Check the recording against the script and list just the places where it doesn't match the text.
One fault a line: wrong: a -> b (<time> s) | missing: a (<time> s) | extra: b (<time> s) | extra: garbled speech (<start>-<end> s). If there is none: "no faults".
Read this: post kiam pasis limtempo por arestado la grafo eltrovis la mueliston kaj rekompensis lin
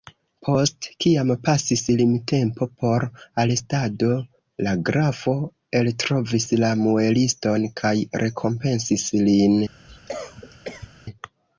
no faults